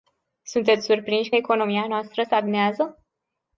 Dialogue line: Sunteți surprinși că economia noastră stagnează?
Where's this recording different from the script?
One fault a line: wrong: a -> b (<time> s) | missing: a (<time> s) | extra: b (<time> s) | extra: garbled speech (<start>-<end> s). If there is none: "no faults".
no faults